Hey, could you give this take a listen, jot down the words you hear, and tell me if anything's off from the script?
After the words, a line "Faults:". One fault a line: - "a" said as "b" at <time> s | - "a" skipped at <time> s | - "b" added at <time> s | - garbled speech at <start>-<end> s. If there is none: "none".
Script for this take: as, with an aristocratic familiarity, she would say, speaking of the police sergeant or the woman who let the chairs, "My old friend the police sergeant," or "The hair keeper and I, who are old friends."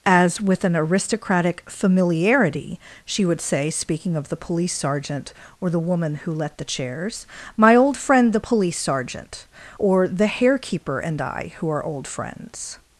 as, with an aristocratic familiarity, she would say, speaking of the police sergeant or the woman who let the chairs, "My old friend the police sergeant," or "The hair keeper and I, who are old friends."
Faults:
none